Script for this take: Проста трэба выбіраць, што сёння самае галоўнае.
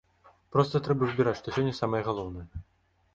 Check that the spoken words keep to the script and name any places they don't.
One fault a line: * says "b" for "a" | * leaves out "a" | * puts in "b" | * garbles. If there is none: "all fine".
all fine